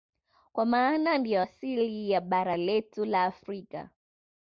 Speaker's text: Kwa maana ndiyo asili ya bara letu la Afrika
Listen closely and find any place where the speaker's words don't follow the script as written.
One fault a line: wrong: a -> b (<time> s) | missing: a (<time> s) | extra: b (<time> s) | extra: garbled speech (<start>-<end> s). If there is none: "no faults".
no faults